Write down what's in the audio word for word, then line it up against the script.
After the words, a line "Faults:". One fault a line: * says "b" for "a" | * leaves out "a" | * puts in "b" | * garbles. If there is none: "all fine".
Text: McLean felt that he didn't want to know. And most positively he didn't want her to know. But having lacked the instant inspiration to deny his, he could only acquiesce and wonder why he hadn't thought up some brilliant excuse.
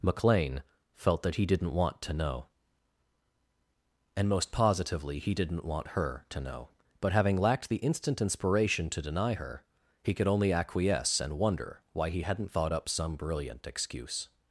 McLean felt that he didn't want to know. And most positively he didn't want her to know. But having lacked the instant inspiration to deny her, he could only acquiesce and wonder why he hadn't thought up some brilliant excuse.
Faults:
* says "her" for "his"